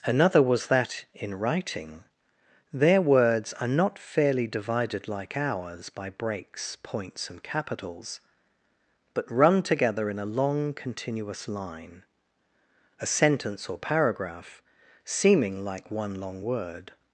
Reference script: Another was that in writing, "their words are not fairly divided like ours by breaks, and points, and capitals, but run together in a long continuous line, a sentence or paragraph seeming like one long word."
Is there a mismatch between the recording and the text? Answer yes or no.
yes